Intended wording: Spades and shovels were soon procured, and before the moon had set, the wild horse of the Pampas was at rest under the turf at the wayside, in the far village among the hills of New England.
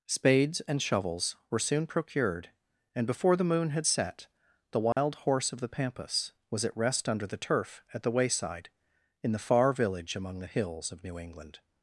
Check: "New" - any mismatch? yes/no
no